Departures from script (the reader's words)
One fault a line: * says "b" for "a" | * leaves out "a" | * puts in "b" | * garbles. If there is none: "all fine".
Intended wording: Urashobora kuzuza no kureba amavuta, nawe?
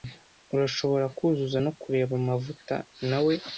all fine